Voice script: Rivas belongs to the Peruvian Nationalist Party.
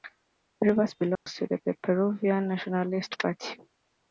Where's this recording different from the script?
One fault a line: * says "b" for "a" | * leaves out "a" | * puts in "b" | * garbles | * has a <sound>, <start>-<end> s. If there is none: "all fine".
* has a dropout, 1.2-1.3 s
* puts in "the"